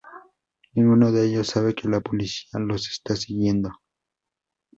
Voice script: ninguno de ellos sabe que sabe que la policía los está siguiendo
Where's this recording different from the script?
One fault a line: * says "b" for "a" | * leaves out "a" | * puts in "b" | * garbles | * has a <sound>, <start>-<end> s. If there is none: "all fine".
* leaves out "sabe que"